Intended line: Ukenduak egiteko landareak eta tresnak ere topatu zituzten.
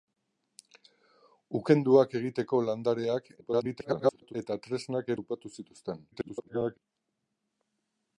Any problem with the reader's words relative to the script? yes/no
yes